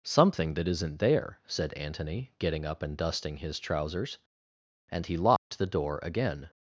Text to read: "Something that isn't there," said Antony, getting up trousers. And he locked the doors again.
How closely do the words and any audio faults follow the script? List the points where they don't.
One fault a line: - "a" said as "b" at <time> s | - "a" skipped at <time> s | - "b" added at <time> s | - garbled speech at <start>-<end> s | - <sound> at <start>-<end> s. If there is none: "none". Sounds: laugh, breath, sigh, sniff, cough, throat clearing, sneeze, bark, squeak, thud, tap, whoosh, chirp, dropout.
- "and dusting his" added at 2.8 s
- dropout at 5.4-5.5 s
- "doors" said as "door" at 5.7 s